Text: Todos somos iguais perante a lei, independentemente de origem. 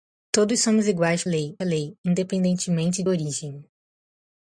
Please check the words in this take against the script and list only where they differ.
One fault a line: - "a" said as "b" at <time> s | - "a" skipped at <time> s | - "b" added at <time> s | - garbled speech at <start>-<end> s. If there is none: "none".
- "perante" said as "lei" at 1.3 s
- "de" skipped at 3.0 s